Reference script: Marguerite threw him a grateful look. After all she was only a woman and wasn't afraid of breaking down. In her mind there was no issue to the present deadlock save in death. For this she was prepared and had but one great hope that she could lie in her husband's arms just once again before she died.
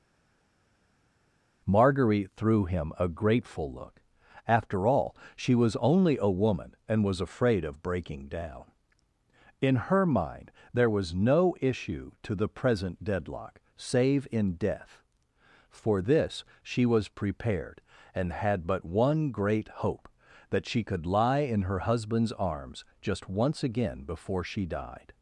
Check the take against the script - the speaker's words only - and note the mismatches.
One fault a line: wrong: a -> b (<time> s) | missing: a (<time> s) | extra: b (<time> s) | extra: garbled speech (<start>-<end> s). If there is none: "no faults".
wrong: wasn't -> was (7.0 s)